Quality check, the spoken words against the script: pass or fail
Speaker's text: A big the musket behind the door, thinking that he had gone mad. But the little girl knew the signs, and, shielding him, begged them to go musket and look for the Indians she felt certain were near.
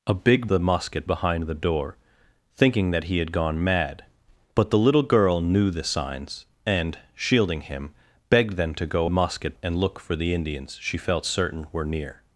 pass